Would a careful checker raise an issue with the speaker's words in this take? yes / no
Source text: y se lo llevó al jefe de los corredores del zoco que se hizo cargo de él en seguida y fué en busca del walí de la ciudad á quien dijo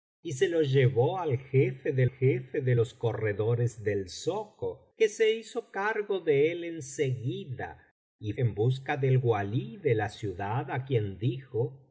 yes